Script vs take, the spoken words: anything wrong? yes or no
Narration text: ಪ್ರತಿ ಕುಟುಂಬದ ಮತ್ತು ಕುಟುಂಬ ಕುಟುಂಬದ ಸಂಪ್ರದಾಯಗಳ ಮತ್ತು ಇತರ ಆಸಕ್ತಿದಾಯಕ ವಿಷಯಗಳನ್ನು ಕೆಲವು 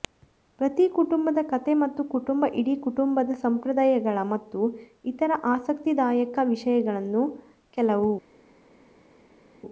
yes